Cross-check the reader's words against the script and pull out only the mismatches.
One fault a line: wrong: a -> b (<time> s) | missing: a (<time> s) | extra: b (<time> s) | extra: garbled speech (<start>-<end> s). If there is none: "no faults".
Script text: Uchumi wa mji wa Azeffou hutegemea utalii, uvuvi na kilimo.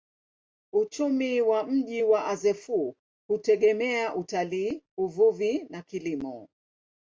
no faults